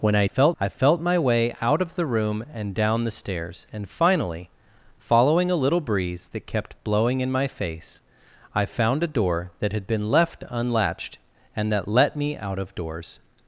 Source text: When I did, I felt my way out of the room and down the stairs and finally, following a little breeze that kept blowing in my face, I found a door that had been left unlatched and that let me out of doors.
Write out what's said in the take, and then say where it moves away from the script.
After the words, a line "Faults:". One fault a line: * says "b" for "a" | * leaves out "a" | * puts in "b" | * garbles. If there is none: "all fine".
When I felt, I felt my way out of the room and down the stairs and finally, following a little breeze that kept blowing in my face, I found a door that had been left unlatched and that let me out of doors.
Faults:
* says "felt" for "did"